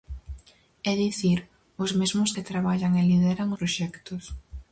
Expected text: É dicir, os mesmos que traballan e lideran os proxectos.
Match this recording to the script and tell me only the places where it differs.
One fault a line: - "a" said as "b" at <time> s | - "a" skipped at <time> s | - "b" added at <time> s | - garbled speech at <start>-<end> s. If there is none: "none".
- "os" skipped at 3.5 s